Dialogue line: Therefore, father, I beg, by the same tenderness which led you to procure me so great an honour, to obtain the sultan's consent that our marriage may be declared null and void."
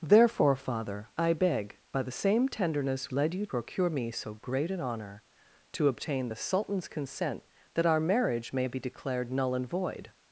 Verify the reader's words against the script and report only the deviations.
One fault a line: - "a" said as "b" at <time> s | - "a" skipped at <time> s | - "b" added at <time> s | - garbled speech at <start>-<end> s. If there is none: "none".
- "which" skipped at 3.1 s
- "to" skipped at 3.5 s